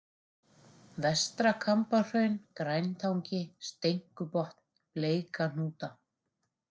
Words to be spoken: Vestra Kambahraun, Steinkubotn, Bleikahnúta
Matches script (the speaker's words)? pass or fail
fail